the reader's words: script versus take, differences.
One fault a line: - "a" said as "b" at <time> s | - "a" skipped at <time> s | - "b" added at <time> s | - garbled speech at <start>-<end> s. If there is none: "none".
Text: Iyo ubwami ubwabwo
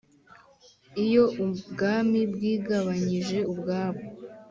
- "bwigabanyije" added at 2.3 s